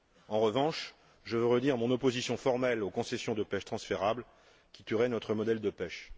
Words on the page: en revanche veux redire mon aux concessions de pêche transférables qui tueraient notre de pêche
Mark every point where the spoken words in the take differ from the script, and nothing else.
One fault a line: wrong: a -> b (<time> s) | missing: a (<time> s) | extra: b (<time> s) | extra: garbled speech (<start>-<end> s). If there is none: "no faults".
extra: je (1.2 s)
extra: opposition formelle (1.9 s)
extra: modèle (5.3 s)